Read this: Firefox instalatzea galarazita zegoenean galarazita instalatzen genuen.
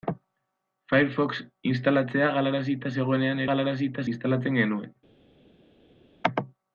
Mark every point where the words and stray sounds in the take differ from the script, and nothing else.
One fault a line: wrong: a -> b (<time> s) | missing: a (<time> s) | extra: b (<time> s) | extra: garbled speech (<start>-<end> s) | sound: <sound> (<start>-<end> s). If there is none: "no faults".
no faults